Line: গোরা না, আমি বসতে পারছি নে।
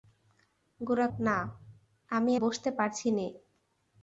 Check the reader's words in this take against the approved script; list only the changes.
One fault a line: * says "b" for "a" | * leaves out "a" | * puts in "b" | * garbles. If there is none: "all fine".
all fine